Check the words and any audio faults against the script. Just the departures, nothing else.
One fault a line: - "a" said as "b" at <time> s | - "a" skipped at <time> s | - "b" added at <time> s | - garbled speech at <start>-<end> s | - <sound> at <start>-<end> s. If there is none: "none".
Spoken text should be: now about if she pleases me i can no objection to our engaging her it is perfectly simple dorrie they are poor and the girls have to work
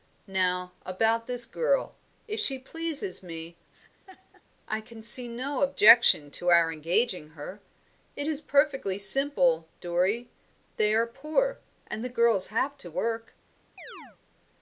- "this girl" added at 1.3 s
- laugh at 3.7-4.4 s
- "see" added at 5.0 s
- chirp at 13.8-14.2 s